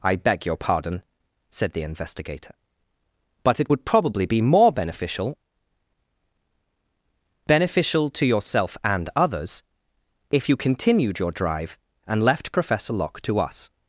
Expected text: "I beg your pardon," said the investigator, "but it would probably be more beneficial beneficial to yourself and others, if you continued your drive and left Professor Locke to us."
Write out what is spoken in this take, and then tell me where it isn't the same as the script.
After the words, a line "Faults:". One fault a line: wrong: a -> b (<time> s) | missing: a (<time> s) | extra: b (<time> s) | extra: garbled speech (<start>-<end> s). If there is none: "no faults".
"I beg your pardon," said the investigator, "but it would probably be more beneficial beneficial to yourself and others, if you continued your drive and left Professor Locke to us."
Faults:
no faults